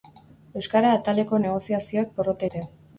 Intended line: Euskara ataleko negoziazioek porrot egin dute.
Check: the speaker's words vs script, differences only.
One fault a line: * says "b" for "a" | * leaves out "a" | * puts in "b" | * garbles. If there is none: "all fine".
* leaves out "egin"